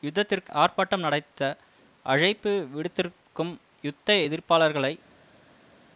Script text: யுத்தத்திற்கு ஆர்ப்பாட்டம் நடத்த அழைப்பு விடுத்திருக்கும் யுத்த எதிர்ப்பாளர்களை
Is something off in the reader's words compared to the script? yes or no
no